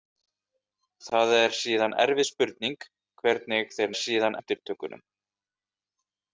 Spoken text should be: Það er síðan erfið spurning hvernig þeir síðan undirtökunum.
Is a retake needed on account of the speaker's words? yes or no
no